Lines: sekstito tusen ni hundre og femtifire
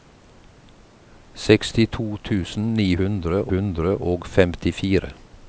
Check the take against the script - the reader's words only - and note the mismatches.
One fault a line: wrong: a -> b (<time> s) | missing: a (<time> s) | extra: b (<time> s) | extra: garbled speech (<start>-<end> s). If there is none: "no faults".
extra: hundre (3.5 s)